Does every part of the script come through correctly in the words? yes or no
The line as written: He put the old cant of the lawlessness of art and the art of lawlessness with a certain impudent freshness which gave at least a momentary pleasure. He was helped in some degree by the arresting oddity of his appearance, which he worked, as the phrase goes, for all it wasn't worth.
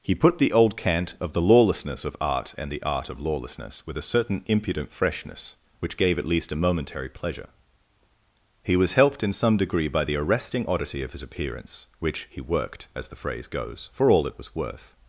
no